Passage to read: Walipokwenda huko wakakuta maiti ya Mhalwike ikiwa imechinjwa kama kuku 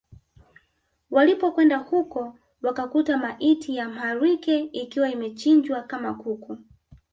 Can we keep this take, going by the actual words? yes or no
yes